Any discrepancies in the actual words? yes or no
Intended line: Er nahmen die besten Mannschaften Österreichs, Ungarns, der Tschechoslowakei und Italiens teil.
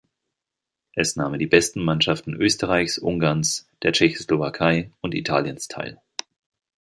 yes